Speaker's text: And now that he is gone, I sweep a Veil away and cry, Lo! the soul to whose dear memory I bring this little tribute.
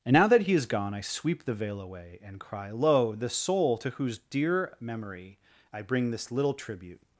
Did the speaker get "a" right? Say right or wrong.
wrong